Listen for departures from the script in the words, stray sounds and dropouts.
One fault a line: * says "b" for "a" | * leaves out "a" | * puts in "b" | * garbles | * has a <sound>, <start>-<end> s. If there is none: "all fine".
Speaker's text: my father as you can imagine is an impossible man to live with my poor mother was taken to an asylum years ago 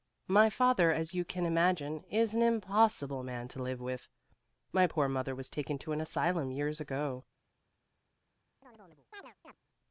* has a chirp, 8.6-9.5 s